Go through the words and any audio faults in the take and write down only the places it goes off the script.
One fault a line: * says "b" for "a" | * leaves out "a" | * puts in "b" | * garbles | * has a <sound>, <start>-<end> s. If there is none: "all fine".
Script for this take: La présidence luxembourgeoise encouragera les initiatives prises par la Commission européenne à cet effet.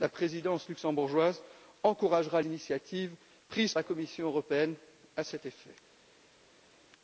* leaves out "les"
* leaves out "par"